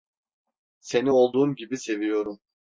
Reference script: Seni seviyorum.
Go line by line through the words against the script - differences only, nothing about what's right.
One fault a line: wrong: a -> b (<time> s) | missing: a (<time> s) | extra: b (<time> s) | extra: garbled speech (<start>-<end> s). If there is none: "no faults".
extra: olduğun gibi (1.1 s)